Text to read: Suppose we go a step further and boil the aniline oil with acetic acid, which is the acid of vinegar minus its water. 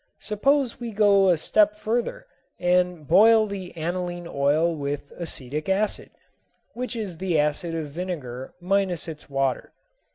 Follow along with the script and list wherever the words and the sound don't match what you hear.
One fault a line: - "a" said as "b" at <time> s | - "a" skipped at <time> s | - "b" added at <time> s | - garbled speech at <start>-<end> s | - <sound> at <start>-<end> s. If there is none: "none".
none